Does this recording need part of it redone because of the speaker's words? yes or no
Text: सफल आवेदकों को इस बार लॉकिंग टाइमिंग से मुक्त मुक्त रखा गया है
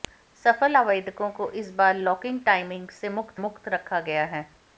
no